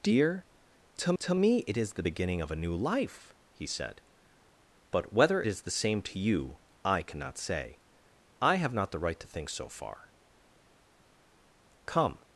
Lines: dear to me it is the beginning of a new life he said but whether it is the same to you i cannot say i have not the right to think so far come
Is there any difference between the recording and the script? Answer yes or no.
yes